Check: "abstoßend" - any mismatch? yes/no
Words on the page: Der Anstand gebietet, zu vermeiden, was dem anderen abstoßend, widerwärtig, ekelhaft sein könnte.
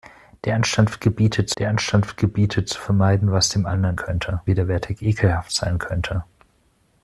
yes